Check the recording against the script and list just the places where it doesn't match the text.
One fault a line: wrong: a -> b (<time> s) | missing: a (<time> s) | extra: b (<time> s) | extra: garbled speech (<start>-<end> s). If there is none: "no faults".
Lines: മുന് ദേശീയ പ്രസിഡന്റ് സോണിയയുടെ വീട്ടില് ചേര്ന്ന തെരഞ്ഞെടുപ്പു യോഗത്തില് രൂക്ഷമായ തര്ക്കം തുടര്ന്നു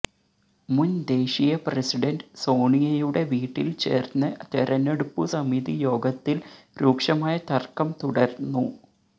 extra: സമിതി (5.3 s)